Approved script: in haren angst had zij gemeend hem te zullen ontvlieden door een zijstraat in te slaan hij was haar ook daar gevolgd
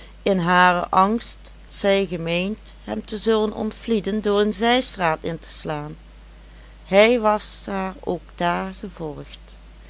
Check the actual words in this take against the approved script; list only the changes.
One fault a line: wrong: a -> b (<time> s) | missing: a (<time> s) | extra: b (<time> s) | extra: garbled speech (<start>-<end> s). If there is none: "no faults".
missing: had (1.5 s)